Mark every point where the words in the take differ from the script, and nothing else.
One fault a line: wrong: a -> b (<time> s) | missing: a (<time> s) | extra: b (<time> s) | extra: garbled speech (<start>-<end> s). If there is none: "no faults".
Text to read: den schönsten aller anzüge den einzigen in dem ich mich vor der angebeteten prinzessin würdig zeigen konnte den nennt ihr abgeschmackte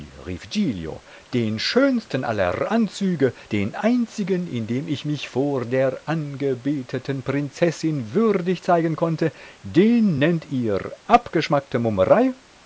no faults